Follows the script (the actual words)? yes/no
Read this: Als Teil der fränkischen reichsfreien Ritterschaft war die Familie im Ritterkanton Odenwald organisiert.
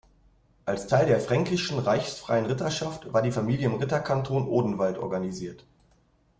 yes